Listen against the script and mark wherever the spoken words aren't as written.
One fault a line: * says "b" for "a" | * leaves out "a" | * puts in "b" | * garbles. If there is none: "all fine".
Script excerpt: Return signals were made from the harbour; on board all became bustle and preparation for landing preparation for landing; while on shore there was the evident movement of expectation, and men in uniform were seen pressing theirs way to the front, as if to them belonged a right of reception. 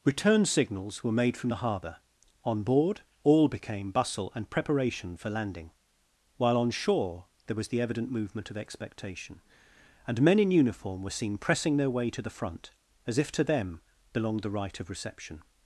* leaves out "preparation for landing"
* says "their" for "theirs"
* says "the" for "a"